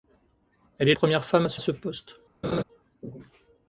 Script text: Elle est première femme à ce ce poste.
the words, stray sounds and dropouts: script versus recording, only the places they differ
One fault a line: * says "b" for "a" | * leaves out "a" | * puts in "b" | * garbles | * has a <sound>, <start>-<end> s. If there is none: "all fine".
* has a laugh, 2.4-2.6 s